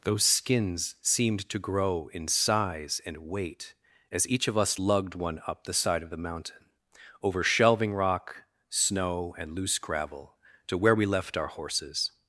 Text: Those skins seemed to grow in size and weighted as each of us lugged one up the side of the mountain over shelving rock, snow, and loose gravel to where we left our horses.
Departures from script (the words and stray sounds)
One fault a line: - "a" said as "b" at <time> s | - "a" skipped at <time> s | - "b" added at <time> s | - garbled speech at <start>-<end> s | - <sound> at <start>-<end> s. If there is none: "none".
- "weighted" said as "weight" at 3.2 s